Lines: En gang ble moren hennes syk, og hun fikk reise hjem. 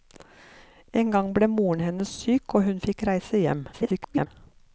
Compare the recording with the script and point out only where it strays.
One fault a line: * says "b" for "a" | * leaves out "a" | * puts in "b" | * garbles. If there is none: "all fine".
* garbles